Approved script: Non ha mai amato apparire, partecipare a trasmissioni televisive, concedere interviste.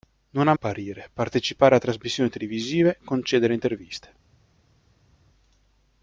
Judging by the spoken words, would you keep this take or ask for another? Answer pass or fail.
fail